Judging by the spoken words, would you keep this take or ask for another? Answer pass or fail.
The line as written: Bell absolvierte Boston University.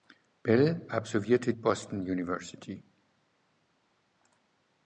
pass